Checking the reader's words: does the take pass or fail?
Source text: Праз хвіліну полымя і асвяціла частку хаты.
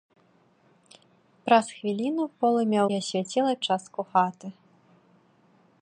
pass